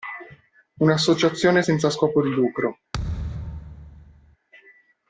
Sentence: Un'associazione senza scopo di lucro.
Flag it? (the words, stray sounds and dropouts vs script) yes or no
yes